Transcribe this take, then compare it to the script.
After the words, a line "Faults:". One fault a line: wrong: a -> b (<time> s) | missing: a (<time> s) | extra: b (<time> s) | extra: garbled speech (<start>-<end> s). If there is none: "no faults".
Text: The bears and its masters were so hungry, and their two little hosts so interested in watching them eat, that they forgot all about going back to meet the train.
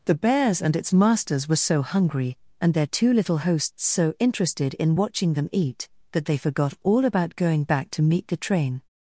The bears and its masters were so hungry, and their two little hosts so interested in watching them eat, that they forgot all about going back to meet the train.
Faults:
no faults